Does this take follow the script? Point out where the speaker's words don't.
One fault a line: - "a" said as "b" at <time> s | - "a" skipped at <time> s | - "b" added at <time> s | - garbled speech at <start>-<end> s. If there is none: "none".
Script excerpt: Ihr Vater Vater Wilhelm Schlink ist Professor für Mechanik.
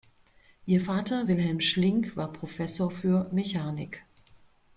- "Vater" skipped at 1.3 s
- "ist" said as "war" at 2.2 s